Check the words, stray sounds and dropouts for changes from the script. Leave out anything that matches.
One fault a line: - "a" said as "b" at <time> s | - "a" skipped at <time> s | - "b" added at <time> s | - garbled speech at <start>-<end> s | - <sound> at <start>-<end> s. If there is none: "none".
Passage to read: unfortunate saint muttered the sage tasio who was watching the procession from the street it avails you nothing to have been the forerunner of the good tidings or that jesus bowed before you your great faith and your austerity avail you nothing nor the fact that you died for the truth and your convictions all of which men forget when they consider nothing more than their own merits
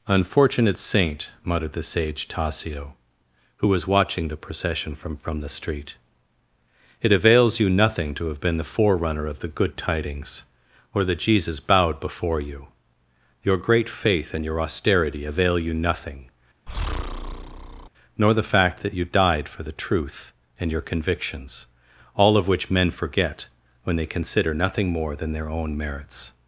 - "from" added at 5.2 s
- breath at 16.7-17.9 s